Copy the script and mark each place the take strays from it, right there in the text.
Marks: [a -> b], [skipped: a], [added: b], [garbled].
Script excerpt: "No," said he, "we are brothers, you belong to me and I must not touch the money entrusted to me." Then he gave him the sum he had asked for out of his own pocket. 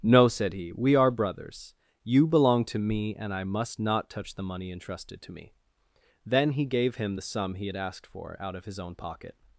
"No," said he, "we are brothers, you belong to me and I must not touch the money entrusted to me." Then he gave him the sum he had asked for out of his own pocket.